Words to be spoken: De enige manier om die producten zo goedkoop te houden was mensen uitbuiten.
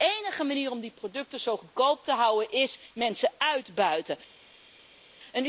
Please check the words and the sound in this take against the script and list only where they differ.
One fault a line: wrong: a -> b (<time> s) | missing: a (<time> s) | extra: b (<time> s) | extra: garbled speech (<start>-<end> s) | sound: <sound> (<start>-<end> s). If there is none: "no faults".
wrong: was -> is (2.5 s)